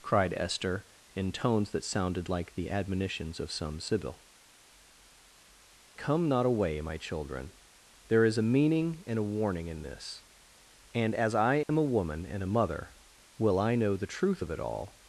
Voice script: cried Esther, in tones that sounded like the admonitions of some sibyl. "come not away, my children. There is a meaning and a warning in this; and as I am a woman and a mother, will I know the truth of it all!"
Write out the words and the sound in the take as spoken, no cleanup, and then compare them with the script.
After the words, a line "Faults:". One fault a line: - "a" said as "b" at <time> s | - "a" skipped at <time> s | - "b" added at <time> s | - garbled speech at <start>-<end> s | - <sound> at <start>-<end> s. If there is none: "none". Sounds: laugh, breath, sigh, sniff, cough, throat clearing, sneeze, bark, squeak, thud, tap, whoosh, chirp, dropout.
cried Esther, in tones that sounded like the admonitions of some sibyl. "come not away, my children. There is a meaning and a warning in this; and as I am a woman and a mother, will I know the truth of it all!"
Faults:
- dropout at 11.6-11.7 s